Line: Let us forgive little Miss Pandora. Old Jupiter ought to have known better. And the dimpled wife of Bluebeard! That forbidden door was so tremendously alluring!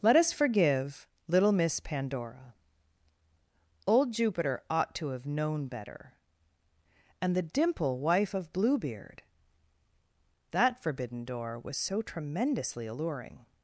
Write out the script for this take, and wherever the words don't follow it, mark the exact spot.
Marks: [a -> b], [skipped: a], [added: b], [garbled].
Let us forgive little Miss Pandora. Old Jupiter ought to have known better. And the [dimpled -> dimple] wife of Bluebeard! That forbidden door was so tremendously alluring!